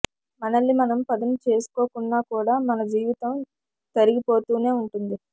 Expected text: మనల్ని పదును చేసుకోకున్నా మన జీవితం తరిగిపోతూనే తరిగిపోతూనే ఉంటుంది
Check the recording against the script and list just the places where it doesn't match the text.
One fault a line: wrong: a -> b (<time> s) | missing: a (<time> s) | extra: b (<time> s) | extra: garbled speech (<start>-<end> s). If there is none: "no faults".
extra: మనం (0.7 s)
extra: కూడా (2.3 s)
missing: తరిగిపోతూనే (4.7 s)